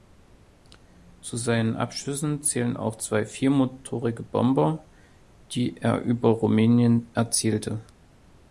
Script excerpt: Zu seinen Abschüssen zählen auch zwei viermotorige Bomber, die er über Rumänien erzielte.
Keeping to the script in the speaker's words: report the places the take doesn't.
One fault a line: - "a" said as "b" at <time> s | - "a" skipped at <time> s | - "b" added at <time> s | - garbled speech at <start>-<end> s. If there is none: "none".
none